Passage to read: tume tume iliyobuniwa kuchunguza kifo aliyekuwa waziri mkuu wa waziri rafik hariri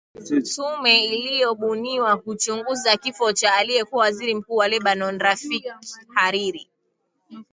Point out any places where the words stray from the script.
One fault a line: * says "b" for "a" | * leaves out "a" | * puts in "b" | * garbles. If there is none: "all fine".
* leaves out "tume"
* puts in "cha"
* says "lebanon" for "waziri"